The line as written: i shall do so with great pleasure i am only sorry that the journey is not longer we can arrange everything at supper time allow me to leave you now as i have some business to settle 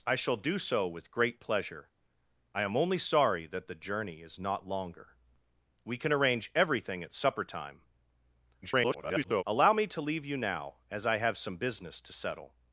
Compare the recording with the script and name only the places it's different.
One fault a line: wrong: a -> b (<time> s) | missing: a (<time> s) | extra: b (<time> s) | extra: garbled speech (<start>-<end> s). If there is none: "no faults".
extra: garbled speech (8.6-9.4 s)